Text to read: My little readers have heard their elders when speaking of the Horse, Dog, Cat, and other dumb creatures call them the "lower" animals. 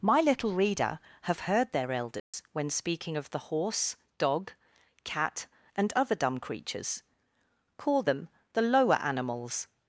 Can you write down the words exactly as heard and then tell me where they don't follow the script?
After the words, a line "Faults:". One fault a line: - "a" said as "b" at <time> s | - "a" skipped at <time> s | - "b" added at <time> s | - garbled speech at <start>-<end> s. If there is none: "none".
My little reader have heard their elders when speaking of the Horse, Dog, Cat, and other dumb creatures call them the "lower" animals.
Faults:
- "readers" said as "reader" at 0.5 s